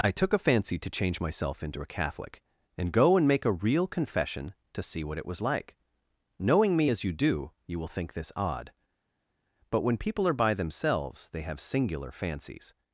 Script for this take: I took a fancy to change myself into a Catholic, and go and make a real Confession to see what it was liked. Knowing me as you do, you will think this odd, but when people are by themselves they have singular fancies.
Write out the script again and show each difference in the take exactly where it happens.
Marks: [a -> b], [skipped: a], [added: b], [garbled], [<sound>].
I took a fancy to change myself into a Catholic, and go and make a real Confession to see what it was [liked. -> like] Knowing me as you do, you will think this odd, but when people are by themselves they have singular fancies.